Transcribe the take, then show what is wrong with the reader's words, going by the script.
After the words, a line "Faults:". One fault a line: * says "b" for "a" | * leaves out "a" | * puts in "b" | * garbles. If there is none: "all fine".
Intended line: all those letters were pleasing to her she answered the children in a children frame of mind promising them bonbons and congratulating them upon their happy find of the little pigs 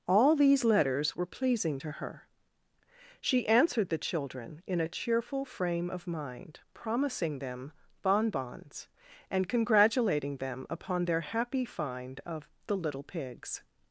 all these letters were pleasing to her she answered the children in a cheerful frame of mind promising them bonbons and congratulating them upon their happy find of the little pigs
Faults:
* says "these" for "those"
* says "cheerful" for "children"